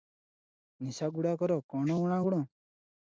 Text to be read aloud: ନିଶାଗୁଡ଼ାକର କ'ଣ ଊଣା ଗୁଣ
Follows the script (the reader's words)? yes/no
yes